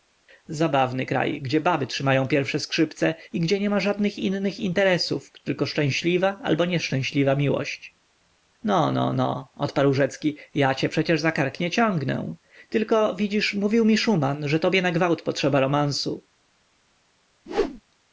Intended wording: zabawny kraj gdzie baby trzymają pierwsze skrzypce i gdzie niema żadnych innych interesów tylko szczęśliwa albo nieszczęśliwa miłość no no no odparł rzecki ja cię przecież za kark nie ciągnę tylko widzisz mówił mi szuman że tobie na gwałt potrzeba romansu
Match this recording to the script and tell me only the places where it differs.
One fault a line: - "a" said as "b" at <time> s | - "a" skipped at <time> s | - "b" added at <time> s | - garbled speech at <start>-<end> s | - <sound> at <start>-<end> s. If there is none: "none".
- whoosh at 17.5-17.8 s